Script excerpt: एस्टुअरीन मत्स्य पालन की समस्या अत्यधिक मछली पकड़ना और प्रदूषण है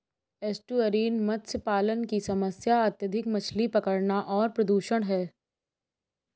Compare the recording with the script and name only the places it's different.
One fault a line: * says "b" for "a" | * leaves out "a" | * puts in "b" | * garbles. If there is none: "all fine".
all fine